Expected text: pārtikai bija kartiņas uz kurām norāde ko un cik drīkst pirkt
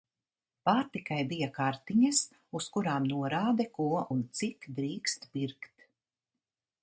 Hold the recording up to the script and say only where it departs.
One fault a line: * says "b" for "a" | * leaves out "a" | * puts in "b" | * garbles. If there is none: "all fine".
all fine